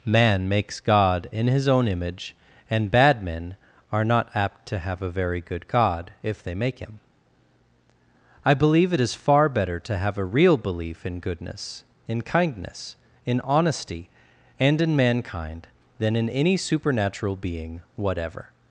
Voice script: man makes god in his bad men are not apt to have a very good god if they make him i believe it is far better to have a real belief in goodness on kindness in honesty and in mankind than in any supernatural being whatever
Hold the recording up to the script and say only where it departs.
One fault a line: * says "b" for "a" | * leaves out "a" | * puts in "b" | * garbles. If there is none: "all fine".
* puts in "own image and"
* says "in" for "on"